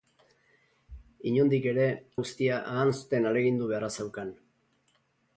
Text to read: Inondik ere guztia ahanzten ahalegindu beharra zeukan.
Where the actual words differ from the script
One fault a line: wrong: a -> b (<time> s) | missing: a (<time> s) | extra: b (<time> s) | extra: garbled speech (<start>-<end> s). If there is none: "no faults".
no faults